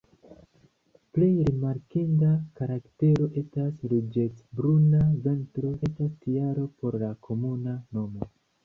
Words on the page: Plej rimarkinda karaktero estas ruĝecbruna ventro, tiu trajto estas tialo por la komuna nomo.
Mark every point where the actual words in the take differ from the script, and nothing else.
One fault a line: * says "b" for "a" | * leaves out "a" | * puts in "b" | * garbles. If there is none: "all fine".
* leaves out "tiu trajto"